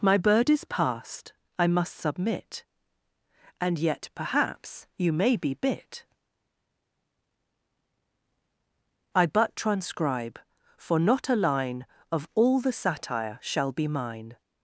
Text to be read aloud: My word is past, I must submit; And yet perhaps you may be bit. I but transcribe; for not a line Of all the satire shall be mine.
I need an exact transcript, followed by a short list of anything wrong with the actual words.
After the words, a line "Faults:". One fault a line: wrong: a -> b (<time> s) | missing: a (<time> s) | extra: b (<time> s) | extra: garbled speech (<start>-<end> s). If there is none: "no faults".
My bird is past, I must submit; And yet perhaps you may be bit. I but transcribe; for not a line Of all the satire shall be mine.
Faults:
wrong: word -> bird (0.2 s)